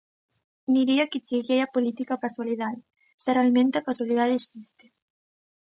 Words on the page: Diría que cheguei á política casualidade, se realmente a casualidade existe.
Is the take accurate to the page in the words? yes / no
yes